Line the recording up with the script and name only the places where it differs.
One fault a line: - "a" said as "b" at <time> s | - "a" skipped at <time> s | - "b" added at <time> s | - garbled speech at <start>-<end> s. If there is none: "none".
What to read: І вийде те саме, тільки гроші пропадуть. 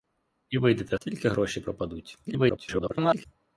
- "саме" skipped at 1.0 s
- garbled speech at 2.3-3.3 s